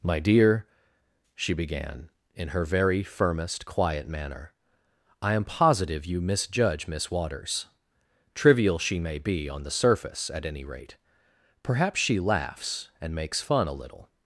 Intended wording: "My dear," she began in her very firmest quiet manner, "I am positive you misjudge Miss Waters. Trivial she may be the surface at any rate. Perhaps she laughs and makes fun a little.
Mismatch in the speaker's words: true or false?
true